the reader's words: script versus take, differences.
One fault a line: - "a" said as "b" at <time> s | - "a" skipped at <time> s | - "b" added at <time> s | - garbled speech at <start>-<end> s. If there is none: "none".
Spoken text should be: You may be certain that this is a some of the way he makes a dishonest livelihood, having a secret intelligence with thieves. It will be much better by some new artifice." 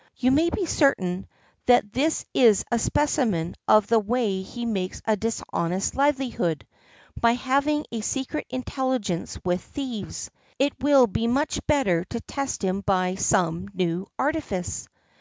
- "some" said as "specimen" at 2.8 s
- "by" added at 7.2 s
- "to test him" added at 12.1 s